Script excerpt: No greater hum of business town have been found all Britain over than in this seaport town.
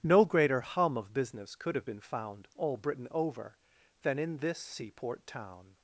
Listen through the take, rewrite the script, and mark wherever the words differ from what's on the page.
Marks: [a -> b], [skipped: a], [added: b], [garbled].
No greater hum of business [town -> could] have been found all Britain over than in this seaport town.